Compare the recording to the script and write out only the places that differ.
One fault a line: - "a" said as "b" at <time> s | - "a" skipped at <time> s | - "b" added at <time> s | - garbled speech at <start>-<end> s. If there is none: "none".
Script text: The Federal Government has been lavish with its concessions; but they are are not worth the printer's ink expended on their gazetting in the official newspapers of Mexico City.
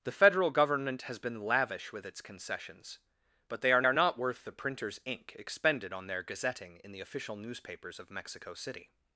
none